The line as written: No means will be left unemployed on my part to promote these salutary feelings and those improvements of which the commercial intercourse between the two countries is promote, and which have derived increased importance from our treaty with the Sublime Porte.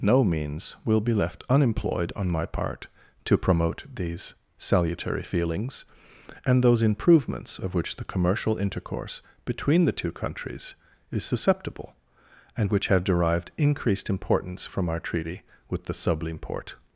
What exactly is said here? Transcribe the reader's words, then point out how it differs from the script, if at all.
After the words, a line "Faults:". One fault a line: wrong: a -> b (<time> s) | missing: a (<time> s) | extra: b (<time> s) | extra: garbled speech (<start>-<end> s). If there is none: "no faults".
No means will be left unemployed on my part to promote these salutary feelings and those improvements of which the commercial intercourse between the two countries is susceptible, and which have derived increased importance from our treaty with the Sublime Porte.
Faults:
wrong: promote -> susceptible (11.2 s)